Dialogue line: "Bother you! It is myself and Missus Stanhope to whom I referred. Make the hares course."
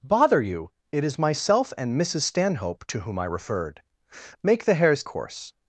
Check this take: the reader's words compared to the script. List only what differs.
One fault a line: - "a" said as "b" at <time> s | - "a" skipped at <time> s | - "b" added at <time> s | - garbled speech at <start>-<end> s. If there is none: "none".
none